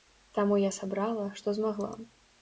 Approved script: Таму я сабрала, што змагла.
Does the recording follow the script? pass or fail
pass